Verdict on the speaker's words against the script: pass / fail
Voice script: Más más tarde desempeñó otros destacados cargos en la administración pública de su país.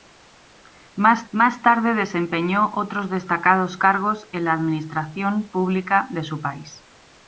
pass